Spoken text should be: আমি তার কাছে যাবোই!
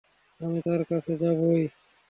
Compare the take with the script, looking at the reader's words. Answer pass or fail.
pass